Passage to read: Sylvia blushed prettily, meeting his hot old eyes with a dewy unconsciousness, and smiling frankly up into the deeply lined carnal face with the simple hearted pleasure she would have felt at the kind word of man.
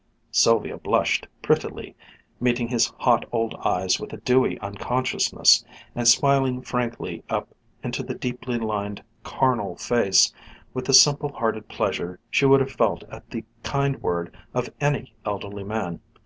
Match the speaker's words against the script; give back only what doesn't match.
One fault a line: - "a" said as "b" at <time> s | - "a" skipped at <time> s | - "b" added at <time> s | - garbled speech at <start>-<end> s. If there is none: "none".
- "any elderly" added at 14.8 s